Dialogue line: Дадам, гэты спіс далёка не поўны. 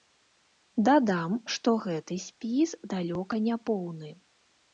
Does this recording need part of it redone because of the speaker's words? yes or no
yes